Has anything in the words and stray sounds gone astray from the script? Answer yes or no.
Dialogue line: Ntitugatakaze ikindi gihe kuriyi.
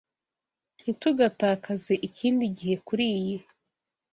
no